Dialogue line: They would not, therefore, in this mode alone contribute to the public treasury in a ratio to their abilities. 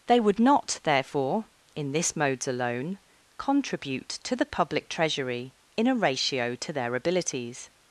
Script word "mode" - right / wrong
wrong